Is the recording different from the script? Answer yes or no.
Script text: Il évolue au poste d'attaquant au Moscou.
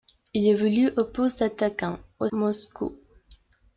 no